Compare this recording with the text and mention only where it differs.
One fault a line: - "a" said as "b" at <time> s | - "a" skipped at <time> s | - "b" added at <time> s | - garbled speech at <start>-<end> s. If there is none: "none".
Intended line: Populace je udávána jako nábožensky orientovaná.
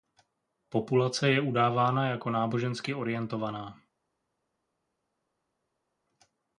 none